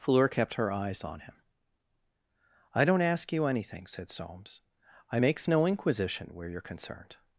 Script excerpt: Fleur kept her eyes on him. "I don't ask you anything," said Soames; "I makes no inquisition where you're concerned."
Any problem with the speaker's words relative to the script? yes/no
no